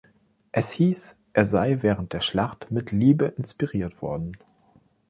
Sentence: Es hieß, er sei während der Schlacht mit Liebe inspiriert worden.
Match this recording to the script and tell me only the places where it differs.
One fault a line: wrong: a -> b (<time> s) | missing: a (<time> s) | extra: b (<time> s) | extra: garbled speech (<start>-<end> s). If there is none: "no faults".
no faults